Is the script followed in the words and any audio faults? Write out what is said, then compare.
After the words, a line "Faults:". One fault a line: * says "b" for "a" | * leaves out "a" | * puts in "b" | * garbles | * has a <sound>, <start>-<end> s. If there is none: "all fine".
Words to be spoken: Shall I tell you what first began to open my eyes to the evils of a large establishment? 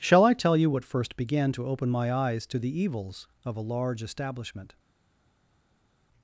Shall I tell you what first began to open my eyes to the evils of a large establishment?
Faults:
all fine